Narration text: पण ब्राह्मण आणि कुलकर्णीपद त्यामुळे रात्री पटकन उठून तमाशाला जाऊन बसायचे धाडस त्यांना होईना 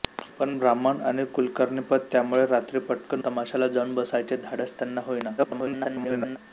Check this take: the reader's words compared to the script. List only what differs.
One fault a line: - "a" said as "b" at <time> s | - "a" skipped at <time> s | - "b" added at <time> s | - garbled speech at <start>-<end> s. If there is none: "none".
- "उठून" skipped at 3.2 s
- garbled speech at 5.4-6.4 s